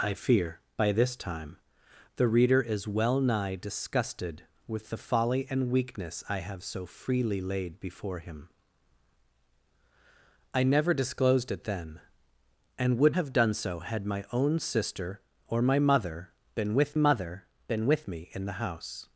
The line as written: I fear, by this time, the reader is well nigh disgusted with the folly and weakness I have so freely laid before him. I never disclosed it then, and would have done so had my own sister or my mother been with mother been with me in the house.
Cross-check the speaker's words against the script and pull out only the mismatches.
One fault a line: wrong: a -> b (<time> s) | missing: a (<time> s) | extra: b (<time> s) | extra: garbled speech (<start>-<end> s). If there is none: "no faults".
no faults